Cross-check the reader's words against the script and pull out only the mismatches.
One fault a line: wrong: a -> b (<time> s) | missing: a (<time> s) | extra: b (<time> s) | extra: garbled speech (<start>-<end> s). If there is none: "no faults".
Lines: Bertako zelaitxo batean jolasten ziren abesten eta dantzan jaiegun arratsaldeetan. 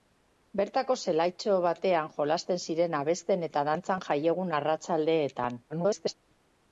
extra: garbled speech (5.7-6.1 s)